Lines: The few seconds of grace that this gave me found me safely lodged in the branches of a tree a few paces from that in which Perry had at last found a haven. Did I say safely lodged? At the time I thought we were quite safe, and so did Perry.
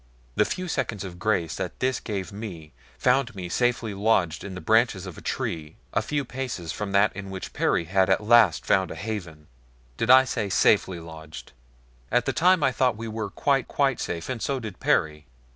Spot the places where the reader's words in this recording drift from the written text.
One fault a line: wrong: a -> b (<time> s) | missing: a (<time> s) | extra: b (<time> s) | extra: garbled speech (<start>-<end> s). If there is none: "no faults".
extra: quite (13.6 s)